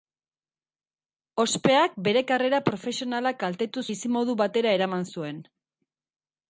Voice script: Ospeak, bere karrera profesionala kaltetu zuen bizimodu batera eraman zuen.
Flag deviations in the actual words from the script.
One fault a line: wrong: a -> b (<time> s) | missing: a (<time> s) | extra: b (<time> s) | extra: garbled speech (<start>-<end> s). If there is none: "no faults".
missing: zuen (3.8 s)